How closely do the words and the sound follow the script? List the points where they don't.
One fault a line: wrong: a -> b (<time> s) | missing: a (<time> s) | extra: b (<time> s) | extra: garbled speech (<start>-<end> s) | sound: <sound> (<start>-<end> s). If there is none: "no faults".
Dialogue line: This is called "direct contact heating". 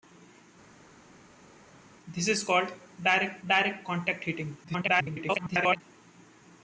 extra: direct (3.4 s)
extra: garbled speech (4.6-5.8 s)